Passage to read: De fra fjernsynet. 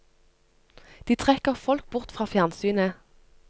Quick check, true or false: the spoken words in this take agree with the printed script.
false